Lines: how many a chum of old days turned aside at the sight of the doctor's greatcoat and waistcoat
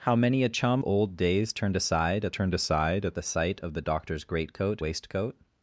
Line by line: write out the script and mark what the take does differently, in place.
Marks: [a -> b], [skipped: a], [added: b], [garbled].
how many a chum [skipped: of] old days turned aside at [added: turned aside at] the sight of the doctor's greatcoat [skipped: and] waistcoat